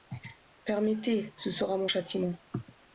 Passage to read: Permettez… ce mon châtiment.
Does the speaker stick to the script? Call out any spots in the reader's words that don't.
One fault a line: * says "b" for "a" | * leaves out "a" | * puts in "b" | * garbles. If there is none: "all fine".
* puts in "sera"